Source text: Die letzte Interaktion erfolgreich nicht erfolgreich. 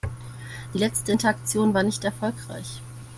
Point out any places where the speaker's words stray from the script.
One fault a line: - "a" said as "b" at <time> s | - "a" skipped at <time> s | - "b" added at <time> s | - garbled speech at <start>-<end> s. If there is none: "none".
- "erfolgreich" said as "war" at 1.7 s